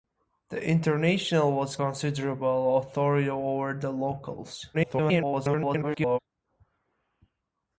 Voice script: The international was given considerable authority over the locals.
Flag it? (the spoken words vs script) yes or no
yes